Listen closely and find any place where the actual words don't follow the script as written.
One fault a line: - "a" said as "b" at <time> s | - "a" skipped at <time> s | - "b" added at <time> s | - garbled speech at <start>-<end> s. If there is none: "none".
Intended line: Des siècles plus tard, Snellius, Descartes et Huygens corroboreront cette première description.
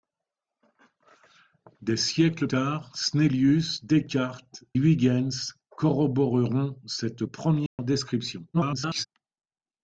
- "plus" skipped at 2.5 s
- "et" skipped at 4.6 s
- garbled speech at 8.5-9.0 s